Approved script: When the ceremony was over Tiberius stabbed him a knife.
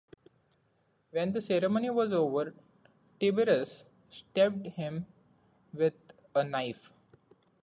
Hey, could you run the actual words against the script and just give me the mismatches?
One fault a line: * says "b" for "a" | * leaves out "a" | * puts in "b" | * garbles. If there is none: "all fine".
* puts in "with"